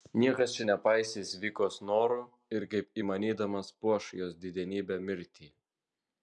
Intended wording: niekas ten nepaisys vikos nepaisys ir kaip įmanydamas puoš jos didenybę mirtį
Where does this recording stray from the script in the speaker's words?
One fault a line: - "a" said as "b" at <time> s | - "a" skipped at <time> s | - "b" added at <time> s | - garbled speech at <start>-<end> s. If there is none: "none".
- "ten" said as "čia" at 0.5 s
- "nepaisys" said as "norų" at 1.9 s